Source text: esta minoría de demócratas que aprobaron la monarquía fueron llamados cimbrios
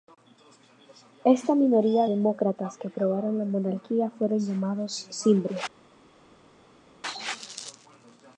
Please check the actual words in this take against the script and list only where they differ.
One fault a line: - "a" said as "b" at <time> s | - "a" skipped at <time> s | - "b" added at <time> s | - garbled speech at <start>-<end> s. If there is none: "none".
- "de" skipped at 2.1 s